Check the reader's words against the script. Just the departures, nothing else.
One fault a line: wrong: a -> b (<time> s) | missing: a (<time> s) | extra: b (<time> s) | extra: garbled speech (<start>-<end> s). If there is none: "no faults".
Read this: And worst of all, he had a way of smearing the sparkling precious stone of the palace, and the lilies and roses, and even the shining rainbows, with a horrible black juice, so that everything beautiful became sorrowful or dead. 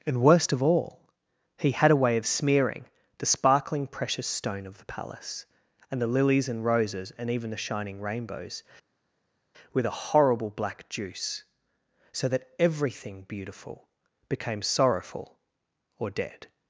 no faults